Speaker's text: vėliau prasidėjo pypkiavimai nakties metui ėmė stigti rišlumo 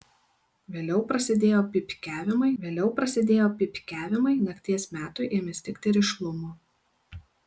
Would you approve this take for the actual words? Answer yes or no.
no